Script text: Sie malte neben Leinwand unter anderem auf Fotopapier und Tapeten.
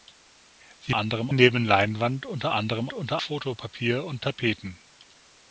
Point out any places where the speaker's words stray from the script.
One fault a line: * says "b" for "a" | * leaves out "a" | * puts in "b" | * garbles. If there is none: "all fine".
* says "anderem" for "malte"
* says "unter" for "auf"